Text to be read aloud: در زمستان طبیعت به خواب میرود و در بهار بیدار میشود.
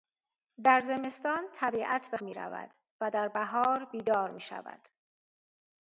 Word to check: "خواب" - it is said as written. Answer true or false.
false